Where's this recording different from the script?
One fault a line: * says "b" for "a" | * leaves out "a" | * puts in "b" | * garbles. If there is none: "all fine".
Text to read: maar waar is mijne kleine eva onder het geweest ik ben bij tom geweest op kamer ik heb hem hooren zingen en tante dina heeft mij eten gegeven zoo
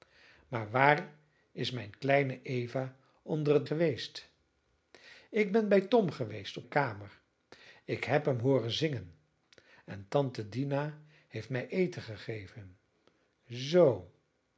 all fine